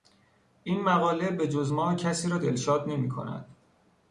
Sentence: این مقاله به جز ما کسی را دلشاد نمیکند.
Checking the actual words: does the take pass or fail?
pass